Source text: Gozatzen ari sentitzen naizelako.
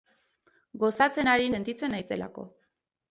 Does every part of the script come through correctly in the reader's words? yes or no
yes